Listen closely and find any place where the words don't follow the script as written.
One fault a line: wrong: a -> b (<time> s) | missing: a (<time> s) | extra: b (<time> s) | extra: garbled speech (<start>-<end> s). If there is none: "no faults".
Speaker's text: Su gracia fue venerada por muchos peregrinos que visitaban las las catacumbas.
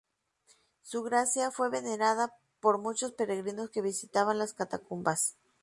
missing: las (4.5 s)